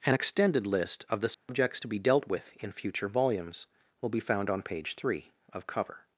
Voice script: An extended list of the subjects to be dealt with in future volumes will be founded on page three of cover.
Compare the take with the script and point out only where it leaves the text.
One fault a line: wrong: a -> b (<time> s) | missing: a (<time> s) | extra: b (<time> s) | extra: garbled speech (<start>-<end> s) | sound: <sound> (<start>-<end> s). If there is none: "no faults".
sound: dropout (1.3-1.5 s)
wrong: founded -> found (4.2 s)